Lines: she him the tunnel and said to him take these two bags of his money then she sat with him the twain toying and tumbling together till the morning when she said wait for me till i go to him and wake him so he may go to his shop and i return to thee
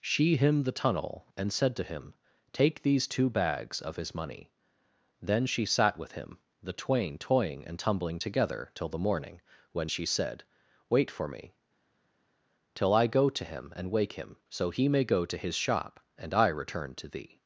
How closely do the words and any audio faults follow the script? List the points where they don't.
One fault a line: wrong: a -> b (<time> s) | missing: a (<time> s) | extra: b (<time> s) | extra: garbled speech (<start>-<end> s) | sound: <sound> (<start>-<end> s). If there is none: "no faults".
no faults